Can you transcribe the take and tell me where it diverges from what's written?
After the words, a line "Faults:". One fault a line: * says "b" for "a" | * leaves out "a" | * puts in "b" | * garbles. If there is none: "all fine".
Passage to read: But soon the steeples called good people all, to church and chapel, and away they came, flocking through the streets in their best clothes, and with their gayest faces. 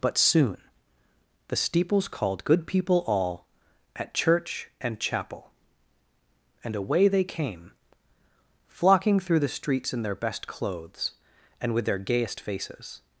But soon the steeples called good people all, at church and chapel, and away they came, flocking through the streets in their best clothes, and with their gayest faces.
Faults:
* says "at" for "to"